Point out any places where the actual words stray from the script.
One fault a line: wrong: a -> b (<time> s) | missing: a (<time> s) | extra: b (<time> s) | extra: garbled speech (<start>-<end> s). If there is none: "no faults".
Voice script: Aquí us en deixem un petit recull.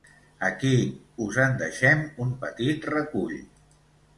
no faults